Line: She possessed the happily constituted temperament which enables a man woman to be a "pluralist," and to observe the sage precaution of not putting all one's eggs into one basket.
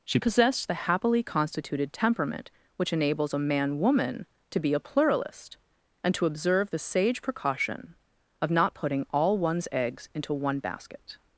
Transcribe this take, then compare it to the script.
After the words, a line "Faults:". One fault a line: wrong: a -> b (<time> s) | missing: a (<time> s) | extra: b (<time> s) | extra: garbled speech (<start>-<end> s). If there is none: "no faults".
She possessed the happily constituted temperament which enables a man woman to be a "pluralist," and to observe the sage precaution of not putting all one's eggs into one basket.
Faults:
no faults